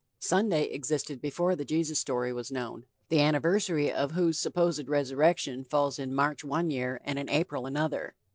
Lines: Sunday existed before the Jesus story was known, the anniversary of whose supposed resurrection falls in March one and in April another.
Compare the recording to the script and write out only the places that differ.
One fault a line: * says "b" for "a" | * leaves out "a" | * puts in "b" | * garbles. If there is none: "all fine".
* puts in "year"